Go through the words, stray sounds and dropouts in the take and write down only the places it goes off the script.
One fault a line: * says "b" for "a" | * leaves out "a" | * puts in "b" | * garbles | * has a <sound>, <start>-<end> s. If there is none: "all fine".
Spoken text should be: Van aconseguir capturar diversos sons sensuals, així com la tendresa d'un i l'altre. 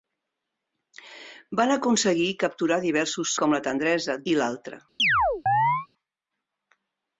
* leaves out "sons sensuals així"
* leaves out "d'un"
* has a chirp, 5.0-5.9 s